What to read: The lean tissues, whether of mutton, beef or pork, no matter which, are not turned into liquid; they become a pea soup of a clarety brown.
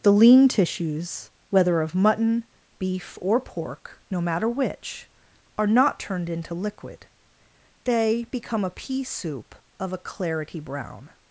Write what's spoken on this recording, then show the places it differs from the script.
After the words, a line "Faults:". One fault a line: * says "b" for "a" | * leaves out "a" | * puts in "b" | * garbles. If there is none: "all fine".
The lean tissues, whether of mutton, beef or pork, no matter which, are not turned into liquid; they become a pea soup of a clarety brown.
Faults:
all fine